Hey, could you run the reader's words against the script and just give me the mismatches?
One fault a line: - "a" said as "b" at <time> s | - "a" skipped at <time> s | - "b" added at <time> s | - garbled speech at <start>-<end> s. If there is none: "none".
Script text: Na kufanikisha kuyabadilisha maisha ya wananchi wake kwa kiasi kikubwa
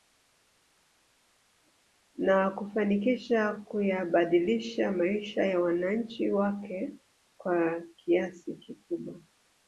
none